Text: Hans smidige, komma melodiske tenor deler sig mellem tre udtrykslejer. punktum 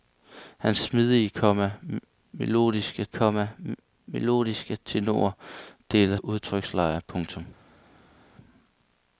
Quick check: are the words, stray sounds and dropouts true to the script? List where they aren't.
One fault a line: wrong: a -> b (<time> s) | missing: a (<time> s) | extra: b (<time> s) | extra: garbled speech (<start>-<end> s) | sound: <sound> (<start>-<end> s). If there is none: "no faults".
extra: komma melodiske (3.1 s)
missing: sig mellem tre (6.2 s)